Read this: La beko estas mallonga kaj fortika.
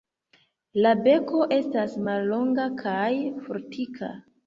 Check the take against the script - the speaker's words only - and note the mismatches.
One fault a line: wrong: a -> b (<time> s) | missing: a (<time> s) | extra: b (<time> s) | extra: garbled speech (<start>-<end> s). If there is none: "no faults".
no faults